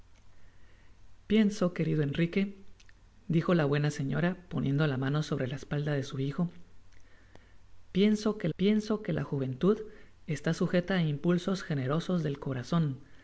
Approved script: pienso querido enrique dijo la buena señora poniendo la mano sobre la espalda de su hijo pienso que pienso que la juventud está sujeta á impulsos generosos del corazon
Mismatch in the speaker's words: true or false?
false